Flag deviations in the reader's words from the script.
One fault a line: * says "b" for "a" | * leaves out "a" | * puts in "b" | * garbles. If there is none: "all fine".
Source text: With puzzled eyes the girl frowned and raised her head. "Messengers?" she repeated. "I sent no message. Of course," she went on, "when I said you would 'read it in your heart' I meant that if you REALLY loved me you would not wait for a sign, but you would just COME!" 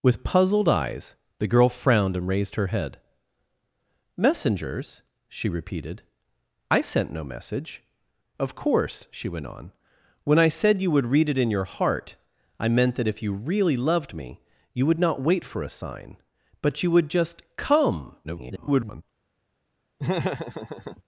* garbles